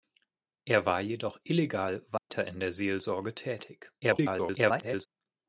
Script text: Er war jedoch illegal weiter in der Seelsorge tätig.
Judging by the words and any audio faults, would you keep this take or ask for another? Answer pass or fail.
fail